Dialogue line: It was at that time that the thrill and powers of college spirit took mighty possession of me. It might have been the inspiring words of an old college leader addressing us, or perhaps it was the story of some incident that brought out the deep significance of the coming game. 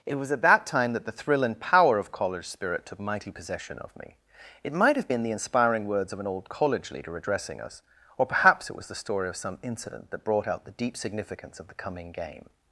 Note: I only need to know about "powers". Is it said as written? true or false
false